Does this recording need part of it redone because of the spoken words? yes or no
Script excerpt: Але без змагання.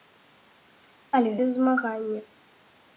no